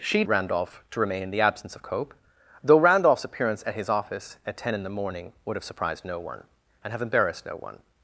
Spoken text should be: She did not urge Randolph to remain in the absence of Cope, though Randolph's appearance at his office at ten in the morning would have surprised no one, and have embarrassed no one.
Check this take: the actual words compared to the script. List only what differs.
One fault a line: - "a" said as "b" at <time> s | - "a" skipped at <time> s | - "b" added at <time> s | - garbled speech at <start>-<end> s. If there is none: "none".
- "did not urge" skipped at 0.2 s